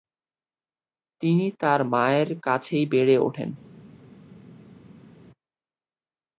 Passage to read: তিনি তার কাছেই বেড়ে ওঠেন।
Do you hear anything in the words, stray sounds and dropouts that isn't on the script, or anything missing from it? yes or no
yes